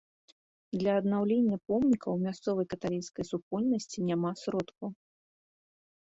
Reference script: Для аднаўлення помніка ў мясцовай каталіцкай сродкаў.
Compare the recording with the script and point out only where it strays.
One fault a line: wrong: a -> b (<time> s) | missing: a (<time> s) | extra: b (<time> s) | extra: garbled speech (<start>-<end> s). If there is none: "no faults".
extra: супольнасці няма (3.3 s)